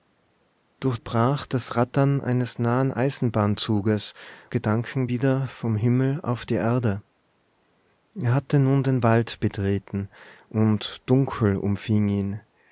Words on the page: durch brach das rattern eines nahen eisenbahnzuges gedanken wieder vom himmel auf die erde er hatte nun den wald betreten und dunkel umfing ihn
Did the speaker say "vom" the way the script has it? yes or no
yes